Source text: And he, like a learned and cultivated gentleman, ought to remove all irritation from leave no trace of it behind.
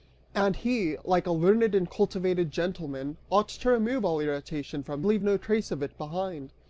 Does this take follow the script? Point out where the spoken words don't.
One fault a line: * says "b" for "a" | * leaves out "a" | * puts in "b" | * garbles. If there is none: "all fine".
all fine